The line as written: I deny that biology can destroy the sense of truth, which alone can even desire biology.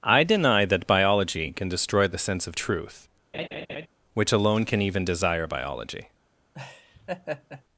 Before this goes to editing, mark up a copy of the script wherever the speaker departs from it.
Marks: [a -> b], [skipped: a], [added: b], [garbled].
I deny that biology can destroy the sense of truth, which alone can even desire biology.